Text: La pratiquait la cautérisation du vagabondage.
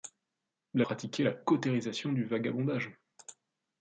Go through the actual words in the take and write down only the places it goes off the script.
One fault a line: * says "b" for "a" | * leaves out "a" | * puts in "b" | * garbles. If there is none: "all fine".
all fine